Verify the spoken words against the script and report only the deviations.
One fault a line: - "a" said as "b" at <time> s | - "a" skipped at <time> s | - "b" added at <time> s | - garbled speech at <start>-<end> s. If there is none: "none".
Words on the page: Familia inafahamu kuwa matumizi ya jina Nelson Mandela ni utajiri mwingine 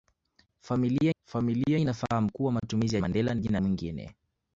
- "familia" added at 1.2 s
- "jina Nelson" skipped at 3.0 s
- "utajiri" said as "jina" at 3.4 s